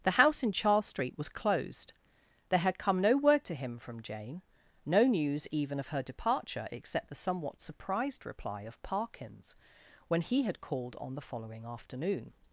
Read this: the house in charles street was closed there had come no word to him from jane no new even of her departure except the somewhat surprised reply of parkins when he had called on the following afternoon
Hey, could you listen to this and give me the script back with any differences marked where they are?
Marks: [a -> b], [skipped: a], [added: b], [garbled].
the house in charles street was closed there had come no word to him from jane no [new -> news] even of her departure except the somewhat surprised reply of parkins when he had called on the following afternoon